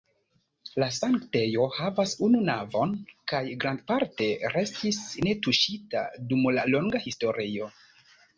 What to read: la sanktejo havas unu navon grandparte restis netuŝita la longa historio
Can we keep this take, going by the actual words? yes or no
no